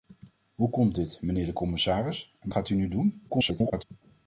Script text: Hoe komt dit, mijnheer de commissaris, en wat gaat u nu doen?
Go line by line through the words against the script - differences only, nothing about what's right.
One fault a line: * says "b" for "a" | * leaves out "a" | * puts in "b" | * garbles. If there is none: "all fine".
* leaves out "wat"
* garbles